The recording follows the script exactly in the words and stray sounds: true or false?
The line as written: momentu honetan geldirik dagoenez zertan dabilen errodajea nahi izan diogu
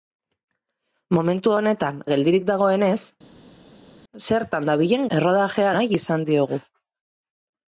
true